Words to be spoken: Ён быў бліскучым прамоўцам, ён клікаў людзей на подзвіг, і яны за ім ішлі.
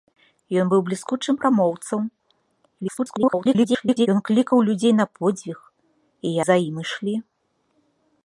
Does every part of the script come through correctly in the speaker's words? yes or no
no